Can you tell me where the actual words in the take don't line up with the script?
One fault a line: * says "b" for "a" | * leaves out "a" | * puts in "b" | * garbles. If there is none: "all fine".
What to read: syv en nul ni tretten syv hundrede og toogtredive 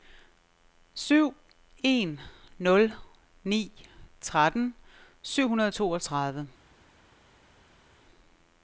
all fine